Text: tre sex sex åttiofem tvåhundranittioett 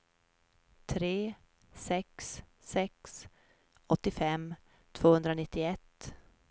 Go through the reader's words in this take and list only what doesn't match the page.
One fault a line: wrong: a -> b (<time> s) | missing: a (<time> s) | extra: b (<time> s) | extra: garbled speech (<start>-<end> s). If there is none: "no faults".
no faults